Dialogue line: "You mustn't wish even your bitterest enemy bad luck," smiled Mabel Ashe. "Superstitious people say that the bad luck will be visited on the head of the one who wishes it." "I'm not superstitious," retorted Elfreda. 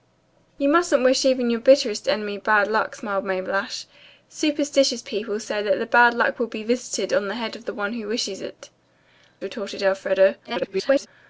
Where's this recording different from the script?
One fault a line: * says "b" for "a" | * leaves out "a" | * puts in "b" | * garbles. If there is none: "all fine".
* leaves out "I'm not superstitious"
* garbles